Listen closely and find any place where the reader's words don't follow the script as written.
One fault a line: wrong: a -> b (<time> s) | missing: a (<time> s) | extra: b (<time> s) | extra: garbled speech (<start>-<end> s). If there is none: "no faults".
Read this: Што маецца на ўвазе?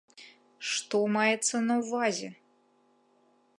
no faults